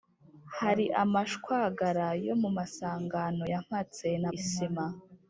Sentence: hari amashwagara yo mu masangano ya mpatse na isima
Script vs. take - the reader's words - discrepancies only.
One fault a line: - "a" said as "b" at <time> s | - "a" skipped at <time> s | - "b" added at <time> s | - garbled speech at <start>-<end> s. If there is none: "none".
none